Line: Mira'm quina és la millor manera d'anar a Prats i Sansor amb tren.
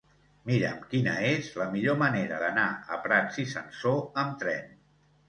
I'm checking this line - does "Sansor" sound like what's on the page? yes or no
yes